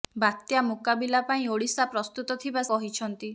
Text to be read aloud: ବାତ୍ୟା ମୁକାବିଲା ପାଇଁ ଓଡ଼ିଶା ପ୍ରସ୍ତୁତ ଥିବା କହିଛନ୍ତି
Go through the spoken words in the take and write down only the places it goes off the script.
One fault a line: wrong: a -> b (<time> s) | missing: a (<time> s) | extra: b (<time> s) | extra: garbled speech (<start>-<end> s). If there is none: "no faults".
no faults